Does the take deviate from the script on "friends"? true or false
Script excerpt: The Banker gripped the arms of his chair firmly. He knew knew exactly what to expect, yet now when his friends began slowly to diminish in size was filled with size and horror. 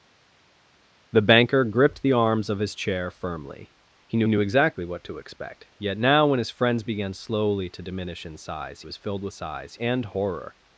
false